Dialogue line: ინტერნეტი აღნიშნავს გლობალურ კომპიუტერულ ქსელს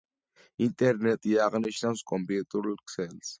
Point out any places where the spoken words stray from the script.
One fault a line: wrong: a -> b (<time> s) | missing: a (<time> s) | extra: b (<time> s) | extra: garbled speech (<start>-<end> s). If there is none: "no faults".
missing: გლობალურ (2.0 s)